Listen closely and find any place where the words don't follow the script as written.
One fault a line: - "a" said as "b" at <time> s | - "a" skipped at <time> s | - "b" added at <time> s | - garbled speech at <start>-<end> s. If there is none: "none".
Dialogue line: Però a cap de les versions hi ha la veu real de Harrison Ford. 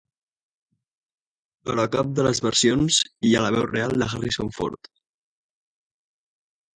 none